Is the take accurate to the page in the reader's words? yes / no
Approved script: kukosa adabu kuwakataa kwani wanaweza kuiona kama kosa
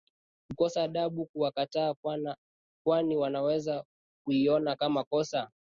yes